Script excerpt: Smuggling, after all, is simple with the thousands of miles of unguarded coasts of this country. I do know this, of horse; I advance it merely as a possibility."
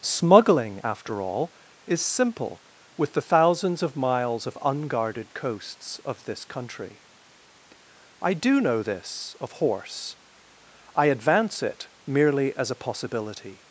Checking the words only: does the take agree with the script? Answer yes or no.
yes